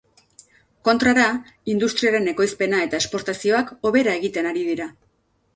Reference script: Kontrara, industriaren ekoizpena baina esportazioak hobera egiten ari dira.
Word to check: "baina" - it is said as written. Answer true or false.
false